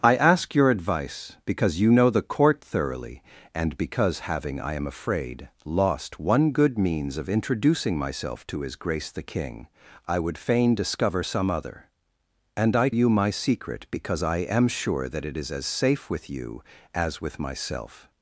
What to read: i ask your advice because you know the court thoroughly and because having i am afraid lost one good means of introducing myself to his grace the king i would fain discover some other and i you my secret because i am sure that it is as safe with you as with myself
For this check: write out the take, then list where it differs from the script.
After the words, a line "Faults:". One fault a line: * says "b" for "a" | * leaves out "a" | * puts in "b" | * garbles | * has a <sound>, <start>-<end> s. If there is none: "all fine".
i ask your advice because you know the court thoroughly and because having i am afraid lost one good means of introducing myself to his grace the king i would fain discover some other and i you my secret because i am sure that it is as safe with you as with myself
Faults:
all fine